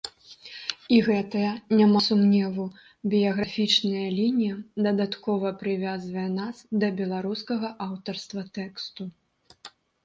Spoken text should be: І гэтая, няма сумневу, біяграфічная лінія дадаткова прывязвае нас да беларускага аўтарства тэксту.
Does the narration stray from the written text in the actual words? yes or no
no